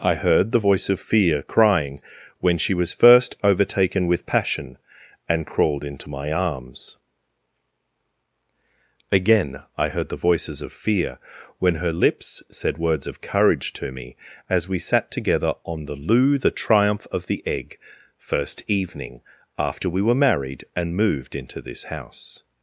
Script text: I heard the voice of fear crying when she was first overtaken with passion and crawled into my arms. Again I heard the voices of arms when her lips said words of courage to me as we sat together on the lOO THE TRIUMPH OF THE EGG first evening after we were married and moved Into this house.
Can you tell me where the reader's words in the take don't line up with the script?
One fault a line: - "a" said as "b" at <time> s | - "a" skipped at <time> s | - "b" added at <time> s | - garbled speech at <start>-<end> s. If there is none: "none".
- "arms" said as "fear" at 10.7 s